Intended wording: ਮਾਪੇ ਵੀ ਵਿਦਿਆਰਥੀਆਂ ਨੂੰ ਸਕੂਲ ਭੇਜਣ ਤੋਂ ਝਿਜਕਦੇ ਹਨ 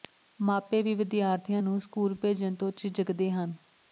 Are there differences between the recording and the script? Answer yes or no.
no